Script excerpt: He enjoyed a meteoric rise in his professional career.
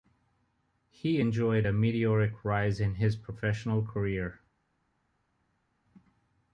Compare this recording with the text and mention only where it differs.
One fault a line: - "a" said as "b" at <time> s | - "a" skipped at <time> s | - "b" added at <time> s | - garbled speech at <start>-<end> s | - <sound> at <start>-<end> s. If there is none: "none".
none